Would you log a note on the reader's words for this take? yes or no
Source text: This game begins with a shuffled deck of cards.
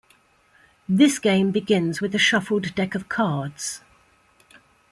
no